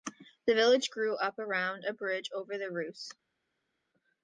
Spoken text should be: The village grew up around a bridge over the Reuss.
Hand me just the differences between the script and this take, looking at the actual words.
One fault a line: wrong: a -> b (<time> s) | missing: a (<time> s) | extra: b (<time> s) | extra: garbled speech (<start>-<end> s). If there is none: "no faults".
no faults